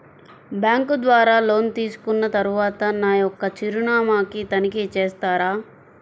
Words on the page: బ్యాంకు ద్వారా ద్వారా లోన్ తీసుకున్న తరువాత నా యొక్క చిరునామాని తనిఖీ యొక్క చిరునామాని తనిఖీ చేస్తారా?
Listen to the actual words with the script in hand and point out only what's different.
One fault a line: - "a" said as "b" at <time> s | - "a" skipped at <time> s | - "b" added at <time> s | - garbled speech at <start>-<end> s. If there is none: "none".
- "ద్వారా" skipped at 1.4 s
- "యొక్క చిరునామాని తనిఖీ" skipped at 4.8 s